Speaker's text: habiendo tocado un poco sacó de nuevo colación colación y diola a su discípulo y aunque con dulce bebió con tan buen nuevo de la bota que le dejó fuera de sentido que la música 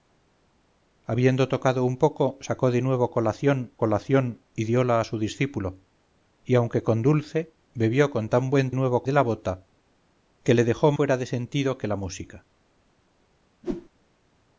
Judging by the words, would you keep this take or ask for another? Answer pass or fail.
pass